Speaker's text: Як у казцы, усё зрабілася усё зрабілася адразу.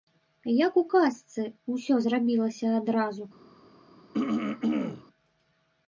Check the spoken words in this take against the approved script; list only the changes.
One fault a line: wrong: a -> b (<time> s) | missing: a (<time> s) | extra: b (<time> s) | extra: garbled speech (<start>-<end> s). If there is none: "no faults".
missing: усё зрабілася (2.7 s)